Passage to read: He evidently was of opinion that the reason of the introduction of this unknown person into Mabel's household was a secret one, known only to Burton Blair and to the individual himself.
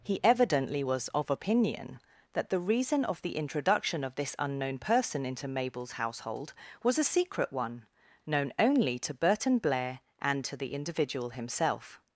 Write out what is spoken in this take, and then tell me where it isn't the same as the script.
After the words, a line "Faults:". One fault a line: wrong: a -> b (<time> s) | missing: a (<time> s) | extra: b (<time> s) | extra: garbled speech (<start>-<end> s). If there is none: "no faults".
He evidently was of opinion that the reason of the introduction of this unknown person into Mabel's household was a secret one, known only to Burton Blair and to the individual himself.
Faults:
no faults